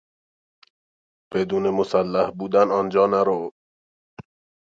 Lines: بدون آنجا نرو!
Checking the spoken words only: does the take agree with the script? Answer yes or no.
no